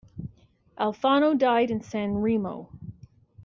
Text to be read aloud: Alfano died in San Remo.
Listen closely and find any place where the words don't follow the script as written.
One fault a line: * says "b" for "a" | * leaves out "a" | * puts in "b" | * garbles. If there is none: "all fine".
all fine